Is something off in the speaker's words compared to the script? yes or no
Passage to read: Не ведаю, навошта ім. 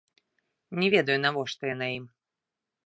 yes